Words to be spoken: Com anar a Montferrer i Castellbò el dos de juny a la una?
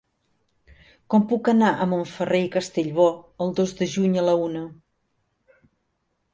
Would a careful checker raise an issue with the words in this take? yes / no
yes